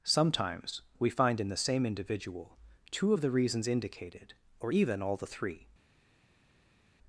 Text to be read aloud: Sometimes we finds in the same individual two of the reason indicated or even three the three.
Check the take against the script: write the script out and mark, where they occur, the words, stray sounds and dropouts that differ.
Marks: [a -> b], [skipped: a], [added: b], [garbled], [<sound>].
Sometimes we [finds -> find] in the same individual two of the [reason -> reasons] indicated or even [three -> all] the three.